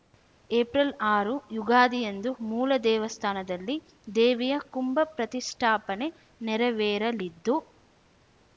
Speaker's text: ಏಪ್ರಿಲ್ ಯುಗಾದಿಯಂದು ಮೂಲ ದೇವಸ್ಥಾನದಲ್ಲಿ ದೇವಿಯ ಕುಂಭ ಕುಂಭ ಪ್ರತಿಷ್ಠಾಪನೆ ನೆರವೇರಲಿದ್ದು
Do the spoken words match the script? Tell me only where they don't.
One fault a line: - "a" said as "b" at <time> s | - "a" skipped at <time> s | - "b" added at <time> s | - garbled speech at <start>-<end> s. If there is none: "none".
- "ಆರು" added at 1.1 s
- "ಕುಂಭ" skipped at 5.0 s